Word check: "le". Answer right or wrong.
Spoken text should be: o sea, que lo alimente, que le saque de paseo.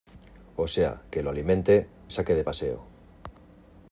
wrong